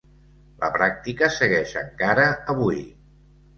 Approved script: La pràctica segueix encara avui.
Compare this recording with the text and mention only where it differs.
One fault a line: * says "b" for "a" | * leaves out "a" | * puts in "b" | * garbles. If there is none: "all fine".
all fine